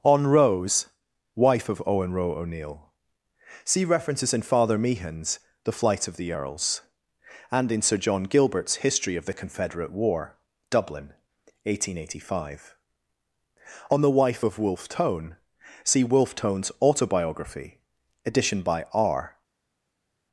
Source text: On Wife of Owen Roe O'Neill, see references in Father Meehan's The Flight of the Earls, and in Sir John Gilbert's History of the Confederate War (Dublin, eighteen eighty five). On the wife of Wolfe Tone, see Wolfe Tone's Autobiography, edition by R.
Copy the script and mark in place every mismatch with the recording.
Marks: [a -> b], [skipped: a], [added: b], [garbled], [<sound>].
On [added: Rose] Wife of Owen Roe O'Neill, see references in Father Meehan's The Flight of the Earls, and in Sir John Gilbert's History of the Confederate War (Dublin, eighteen eighty five). On the wife of Wolfe Tone, see Wolfe Tone's Autobiography, edition by R.